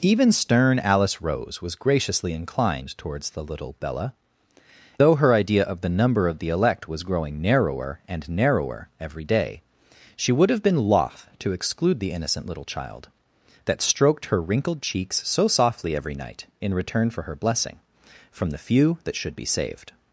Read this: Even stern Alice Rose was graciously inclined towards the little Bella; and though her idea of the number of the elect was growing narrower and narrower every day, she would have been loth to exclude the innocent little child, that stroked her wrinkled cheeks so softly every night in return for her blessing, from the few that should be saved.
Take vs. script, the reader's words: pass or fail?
fail